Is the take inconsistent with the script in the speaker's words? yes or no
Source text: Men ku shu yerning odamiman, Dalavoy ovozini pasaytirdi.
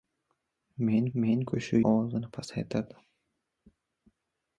yes